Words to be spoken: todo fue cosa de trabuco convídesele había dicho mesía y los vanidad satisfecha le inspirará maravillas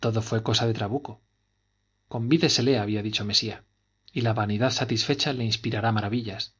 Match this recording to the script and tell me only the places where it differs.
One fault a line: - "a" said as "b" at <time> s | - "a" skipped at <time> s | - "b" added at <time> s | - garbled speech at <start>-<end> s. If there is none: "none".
- "los" said as "la" at 4.2 s